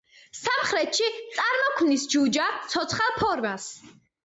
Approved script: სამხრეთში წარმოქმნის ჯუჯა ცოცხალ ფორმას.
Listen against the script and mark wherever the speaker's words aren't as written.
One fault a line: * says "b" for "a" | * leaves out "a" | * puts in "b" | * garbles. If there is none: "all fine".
all fine